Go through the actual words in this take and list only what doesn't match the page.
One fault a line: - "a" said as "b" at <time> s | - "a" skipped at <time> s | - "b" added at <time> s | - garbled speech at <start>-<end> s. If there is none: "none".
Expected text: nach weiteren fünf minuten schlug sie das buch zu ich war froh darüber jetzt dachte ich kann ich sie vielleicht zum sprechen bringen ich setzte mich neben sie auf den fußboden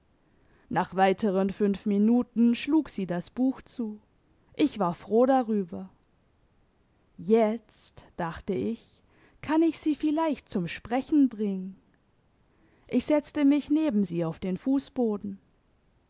none